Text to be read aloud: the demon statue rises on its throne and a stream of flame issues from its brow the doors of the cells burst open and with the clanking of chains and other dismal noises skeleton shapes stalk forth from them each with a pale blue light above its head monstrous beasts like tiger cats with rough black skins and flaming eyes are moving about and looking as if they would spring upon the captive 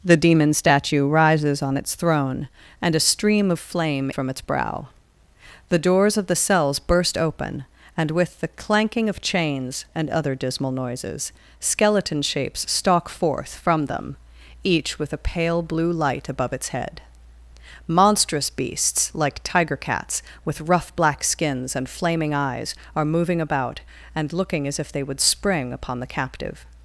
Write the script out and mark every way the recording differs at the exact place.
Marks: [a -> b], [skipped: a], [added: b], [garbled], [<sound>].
the demon statue rises on its throne and a stream of flame [skipped: issues] from its brow the doors of the cells burst open and with the clanking of chains and other dismal noises skeleton shapes stalk forth from them each with a pale blue light above its head monstrous beasts like tiger cats with rough black skins and flaming eyes are moving about and looking as if they would spring upon the captive